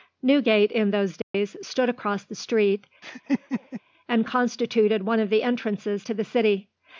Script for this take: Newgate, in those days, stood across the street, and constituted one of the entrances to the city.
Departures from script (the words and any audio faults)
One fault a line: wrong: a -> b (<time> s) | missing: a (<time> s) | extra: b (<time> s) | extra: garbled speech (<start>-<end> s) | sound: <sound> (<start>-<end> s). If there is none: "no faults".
sound: dropout (1.2-1.3 s)
sound: laugh (3.0-3.8 s)